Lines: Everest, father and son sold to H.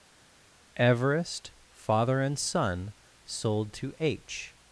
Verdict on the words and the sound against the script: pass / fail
pass